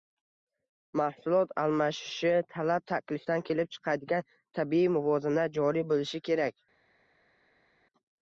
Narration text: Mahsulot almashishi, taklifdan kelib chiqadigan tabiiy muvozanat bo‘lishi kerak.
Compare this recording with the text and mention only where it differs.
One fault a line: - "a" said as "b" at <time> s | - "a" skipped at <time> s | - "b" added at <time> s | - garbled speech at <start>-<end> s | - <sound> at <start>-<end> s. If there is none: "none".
- "talab" added at 2.5 s
- "joriy" added at 5.6 s